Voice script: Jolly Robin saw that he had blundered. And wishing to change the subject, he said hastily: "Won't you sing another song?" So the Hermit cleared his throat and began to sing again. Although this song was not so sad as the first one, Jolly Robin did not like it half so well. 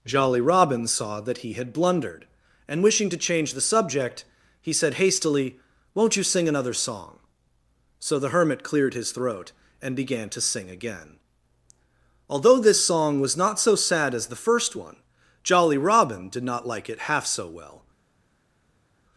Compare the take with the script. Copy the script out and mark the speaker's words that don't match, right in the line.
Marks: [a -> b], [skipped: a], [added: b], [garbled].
Jolly Robin saw that he had blundered. And wishing to change the subject, he said hastily: "Won't you sing another song?" So the Hermit cleared his throat and began to sing again. Although this song was not so sad as the first one, Jolly Robin did not like it half so well.